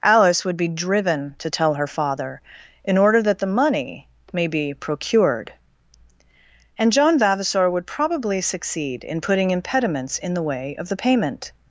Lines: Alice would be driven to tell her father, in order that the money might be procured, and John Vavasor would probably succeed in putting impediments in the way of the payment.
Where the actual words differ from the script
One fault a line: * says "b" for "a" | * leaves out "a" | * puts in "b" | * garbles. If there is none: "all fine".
* says "may" for "might"